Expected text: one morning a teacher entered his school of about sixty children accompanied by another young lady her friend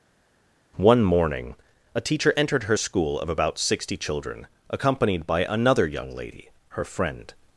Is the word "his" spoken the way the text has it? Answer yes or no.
no